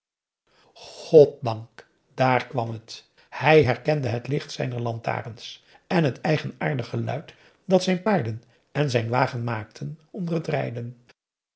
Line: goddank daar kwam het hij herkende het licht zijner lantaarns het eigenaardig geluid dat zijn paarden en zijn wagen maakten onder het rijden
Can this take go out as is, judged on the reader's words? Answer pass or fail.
fail